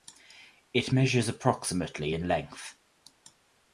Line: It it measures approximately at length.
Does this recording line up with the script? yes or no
no